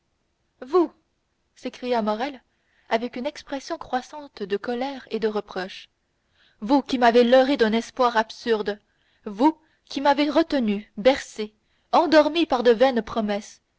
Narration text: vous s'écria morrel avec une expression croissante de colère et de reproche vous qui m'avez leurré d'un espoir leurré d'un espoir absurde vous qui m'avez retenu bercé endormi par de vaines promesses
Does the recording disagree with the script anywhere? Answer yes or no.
yes